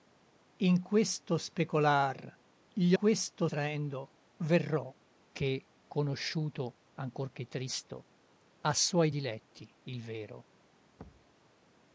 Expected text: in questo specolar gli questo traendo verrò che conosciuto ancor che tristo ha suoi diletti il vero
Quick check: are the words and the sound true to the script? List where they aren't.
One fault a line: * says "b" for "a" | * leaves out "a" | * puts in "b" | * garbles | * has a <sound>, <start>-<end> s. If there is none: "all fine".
* has a thud, 11.0-11.4 s